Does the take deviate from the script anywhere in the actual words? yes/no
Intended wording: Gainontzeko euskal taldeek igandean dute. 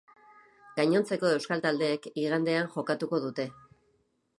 yes